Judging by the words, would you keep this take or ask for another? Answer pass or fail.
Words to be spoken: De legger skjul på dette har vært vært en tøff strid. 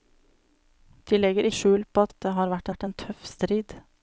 pass